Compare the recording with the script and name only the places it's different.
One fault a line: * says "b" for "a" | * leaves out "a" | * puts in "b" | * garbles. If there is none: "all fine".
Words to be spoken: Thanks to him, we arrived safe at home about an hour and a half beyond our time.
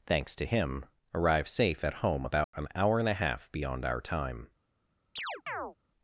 * leaves out "we"